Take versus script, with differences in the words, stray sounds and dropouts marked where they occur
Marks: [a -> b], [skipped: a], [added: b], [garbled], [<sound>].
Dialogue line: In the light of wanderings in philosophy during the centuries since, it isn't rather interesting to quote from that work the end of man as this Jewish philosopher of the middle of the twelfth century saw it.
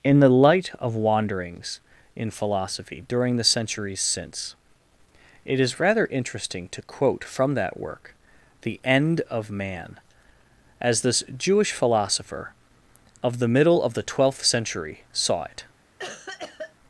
In the light of wanderings in philosophy during the centuries since, it [isn't -> is] rather interesting to quote from that work the end of man as this Jewish philosopher of the middle of the twelfth century saw it. [cough]